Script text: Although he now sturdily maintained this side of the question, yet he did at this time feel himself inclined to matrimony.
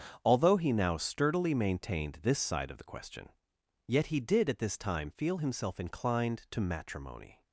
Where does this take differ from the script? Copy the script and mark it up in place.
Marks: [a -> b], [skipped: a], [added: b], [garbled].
Although he now sturdily maintained this side of the question, yet he did at this time feel himself inclined to matrimony.